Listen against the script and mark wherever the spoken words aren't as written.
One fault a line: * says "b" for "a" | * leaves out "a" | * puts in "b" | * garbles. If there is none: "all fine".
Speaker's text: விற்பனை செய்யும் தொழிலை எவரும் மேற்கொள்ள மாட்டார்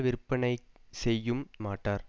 * leaves out "தொழிலை எவரும் மேற்கொள்ள"